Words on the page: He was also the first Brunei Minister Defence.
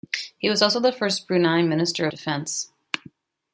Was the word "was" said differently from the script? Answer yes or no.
no